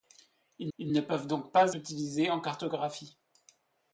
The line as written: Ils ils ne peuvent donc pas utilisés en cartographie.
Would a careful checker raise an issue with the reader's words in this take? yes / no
no